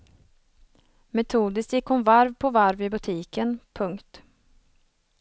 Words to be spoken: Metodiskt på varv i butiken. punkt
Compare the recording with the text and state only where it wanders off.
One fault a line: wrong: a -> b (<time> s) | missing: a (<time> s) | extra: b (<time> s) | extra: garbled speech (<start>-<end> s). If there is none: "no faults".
extra: gick hon varv (1.7 s)